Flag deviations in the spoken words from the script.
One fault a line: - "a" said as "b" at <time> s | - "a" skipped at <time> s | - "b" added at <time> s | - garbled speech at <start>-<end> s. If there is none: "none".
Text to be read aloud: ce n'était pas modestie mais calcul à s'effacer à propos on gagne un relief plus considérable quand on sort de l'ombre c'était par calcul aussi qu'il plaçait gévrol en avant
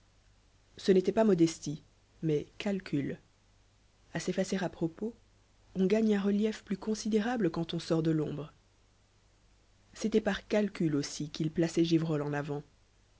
none